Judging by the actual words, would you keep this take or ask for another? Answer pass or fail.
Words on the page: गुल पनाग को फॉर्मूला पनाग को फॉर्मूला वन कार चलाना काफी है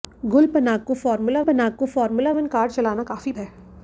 pass